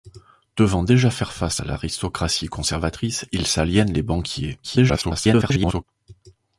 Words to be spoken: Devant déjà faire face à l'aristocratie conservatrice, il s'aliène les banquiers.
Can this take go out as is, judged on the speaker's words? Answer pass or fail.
fail